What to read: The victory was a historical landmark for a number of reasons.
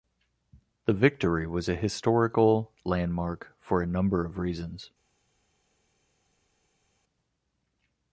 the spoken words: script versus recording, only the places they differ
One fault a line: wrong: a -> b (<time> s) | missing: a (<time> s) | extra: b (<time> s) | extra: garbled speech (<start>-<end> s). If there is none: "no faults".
no faults